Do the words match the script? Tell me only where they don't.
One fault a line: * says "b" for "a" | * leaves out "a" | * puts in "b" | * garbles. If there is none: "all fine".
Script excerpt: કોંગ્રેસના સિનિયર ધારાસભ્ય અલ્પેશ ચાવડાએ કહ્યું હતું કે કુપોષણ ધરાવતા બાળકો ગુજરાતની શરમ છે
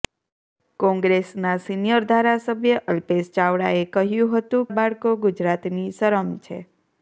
* leaves out "કે કુપોષણ ધરાવતા"